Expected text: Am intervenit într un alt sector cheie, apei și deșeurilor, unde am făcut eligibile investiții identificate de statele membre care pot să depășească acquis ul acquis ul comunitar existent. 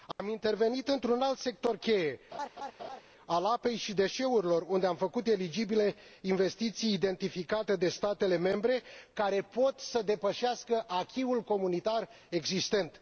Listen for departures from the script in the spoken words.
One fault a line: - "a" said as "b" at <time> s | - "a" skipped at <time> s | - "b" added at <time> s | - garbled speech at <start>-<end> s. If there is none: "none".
- "al" added at 3.3 s
- "acquis ul" skipped at 11.4 s